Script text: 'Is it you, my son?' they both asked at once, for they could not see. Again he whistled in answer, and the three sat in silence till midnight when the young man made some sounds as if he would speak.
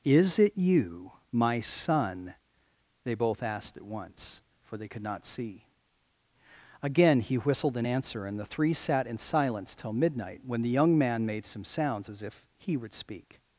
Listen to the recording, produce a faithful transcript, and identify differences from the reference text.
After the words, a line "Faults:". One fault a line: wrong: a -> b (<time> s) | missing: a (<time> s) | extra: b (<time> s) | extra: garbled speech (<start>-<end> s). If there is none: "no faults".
'Is it you, my son?' they both asked at once, for they could not see. Again he whistled in answer, and the three sat in silence till midnight when the young man made some sounds as if he would speak.
Faults:
no faults